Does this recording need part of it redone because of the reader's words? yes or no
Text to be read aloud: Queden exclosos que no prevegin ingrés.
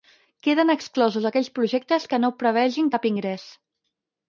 yes